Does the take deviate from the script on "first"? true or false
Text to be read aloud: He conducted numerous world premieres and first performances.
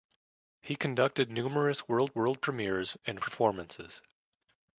true